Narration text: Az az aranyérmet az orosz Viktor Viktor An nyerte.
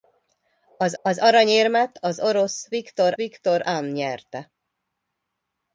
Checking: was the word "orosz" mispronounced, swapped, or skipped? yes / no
no